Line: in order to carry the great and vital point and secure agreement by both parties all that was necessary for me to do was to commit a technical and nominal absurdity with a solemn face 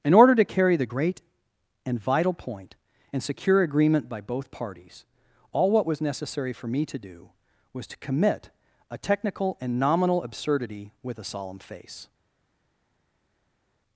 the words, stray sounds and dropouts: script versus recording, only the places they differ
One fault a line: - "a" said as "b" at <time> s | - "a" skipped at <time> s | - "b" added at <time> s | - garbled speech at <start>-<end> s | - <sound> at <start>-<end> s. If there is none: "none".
- "that" said as "what" at 5.7 s